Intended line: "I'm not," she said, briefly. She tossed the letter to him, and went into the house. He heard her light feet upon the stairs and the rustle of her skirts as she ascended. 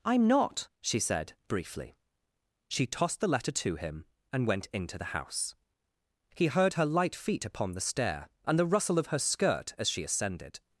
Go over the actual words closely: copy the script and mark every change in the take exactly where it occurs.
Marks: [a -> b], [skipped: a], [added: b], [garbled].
"I'm not," she said, briefly. She tossed the letter to him, and went into the house. He heard her light feet upon the [stairs -> stair] and the rustle of her [skirts -> skirt] as she ascended.